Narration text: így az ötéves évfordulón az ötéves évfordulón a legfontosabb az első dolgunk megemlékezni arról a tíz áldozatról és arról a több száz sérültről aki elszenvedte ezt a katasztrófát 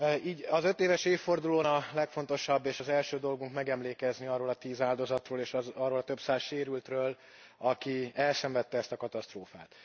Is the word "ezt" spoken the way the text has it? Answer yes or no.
yes